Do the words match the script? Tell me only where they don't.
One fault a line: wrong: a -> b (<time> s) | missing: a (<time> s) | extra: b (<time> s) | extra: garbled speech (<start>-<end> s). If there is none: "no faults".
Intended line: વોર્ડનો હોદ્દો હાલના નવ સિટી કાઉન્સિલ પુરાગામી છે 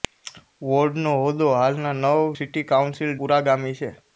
no faults